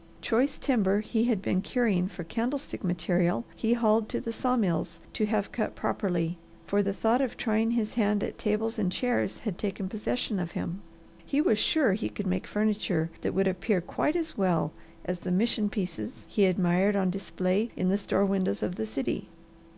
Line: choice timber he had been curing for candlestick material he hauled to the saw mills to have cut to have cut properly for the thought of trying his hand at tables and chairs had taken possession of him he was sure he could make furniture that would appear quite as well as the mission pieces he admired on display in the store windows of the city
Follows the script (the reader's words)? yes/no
no